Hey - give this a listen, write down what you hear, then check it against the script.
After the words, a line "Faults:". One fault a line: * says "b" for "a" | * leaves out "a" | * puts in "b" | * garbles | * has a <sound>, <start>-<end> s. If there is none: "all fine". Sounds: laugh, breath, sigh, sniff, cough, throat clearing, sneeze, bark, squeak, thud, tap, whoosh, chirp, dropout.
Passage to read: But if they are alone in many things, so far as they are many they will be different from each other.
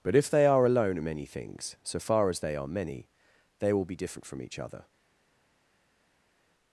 But if they are alone in many things, so far as they are many they will be different from each other.
Faults:
all fine